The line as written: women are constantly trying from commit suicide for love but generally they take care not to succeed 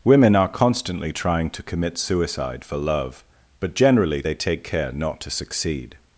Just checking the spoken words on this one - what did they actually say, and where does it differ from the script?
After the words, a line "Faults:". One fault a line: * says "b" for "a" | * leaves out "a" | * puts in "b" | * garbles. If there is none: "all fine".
women are constantly trying to commit suicide for love but generally they take care not to succeed
Faults:
* says "to" for "from"